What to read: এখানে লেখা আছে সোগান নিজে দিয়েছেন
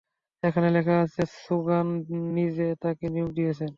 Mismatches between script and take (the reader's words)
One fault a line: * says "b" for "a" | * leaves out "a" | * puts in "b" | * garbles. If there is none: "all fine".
* puts in "তাকে নিয়োগ"